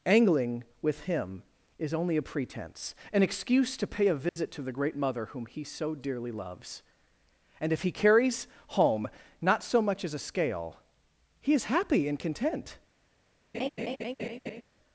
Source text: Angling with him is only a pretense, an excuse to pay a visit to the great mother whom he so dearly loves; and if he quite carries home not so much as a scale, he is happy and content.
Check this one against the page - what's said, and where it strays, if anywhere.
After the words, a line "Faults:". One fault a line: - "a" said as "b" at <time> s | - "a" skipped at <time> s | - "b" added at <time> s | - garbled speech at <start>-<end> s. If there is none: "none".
Angling with him is only a pretense, an excuse to pay a visit to the great mother whom he so dearly loves; and if he carries home not so much as a scale, he is happy and content.
Faults:
- "quite" skipped at 7.9 s